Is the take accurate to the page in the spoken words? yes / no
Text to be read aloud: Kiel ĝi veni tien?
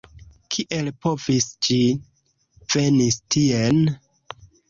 no